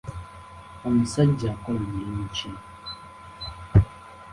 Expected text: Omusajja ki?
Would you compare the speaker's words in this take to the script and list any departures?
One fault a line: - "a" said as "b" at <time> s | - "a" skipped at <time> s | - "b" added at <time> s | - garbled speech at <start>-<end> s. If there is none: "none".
- "akola mulimu" added at 1.5 s